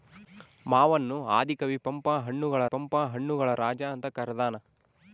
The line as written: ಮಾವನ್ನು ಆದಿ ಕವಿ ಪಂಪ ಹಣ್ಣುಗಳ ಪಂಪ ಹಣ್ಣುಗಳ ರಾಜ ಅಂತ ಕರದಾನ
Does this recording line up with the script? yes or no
yes